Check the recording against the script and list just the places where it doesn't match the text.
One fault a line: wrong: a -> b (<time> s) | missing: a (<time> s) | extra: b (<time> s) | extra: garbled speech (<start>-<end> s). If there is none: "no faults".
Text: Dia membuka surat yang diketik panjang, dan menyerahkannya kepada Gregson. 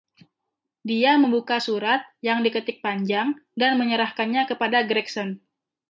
no faults